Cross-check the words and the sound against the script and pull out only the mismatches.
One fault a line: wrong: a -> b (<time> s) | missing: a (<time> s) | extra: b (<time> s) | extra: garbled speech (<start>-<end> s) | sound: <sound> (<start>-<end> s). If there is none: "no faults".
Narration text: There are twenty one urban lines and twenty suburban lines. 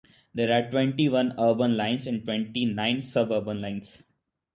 extra: nine (2.6 s)